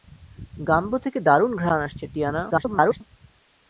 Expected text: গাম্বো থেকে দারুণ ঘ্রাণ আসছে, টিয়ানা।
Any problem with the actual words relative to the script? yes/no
yes